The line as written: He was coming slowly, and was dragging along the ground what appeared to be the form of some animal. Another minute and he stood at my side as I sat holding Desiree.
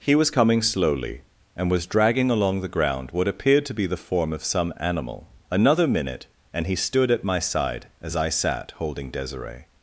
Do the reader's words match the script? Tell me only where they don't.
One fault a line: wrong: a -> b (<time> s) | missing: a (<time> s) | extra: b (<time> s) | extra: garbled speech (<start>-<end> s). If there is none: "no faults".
no faults